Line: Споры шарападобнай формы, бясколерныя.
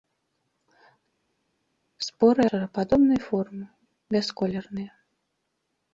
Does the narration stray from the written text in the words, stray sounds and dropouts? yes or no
no